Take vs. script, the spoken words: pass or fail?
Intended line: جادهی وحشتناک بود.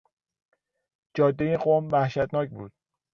fail